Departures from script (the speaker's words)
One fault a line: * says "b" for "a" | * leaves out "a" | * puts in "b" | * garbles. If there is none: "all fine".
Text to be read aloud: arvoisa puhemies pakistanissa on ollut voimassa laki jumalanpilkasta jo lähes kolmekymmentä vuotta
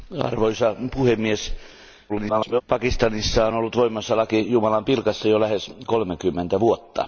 * garbles